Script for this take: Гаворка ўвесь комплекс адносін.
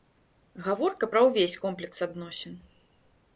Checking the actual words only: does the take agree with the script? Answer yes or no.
no